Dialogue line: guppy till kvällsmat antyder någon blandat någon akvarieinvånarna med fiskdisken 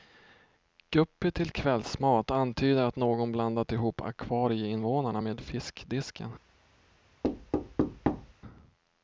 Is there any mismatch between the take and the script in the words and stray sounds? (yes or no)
yes